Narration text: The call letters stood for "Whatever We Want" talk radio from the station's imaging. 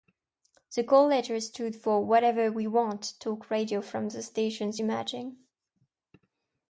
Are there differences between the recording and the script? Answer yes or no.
no